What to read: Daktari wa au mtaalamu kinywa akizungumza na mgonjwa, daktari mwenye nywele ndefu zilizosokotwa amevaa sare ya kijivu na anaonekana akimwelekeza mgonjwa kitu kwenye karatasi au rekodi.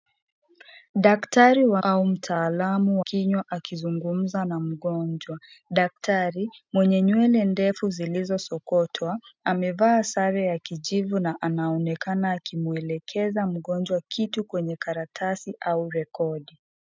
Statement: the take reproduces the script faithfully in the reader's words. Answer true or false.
true